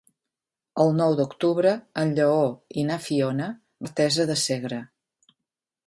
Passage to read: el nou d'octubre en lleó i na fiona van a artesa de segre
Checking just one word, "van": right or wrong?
wrong